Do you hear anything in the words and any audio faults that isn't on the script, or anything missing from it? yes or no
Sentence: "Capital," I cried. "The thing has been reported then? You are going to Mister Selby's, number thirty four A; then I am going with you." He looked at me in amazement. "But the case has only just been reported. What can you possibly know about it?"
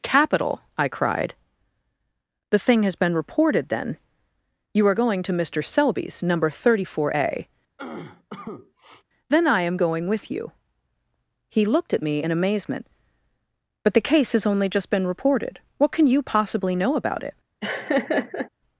yes